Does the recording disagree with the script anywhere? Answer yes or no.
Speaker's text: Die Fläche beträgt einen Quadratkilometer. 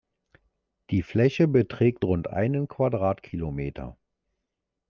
yes